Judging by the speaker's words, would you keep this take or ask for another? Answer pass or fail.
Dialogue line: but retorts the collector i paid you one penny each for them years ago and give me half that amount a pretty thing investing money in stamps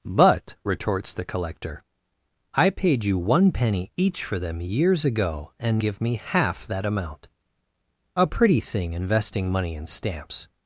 pass